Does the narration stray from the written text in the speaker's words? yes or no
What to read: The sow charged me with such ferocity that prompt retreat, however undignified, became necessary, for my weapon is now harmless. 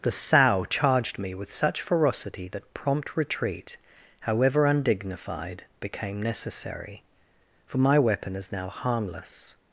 no